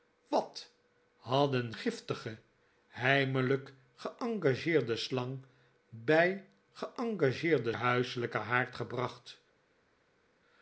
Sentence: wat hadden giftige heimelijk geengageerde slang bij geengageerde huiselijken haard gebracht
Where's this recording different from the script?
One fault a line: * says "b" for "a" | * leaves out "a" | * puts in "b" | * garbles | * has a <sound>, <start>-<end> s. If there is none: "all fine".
all fine